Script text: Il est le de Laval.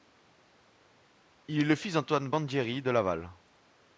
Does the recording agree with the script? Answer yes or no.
no